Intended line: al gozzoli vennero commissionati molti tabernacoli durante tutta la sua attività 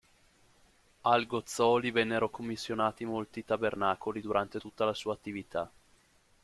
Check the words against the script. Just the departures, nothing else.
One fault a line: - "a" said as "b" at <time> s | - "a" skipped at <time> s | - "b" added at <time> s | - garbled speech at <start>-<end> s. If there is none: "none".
none